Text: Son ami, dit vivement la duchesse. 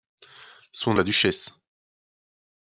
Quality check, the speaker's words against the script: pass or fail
fail